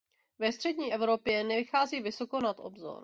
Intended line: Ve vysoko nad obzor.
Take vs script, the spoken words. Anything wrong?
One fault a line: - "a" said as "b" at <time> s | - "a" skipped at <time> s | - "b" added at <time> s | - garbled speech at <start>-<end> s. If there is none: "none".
- "střední Evropě nevychází" added at 0.5 s